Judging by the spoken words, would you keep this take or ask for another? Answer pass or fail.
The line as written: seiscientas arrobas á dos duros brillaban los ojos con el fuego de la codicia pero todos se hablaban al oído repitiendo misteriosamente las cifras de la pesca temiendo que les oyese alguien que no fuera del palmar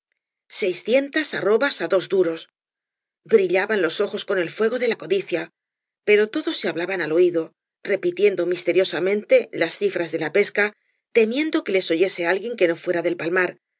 pass